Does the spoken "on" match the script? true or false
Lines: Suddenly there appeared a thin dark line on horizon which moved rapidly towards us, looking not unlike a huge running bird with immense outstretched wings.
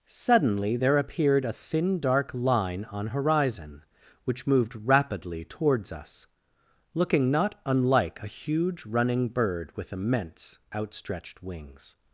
true